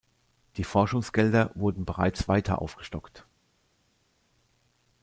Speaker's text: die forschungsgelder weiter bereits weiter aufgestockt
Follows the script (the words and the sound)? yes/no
no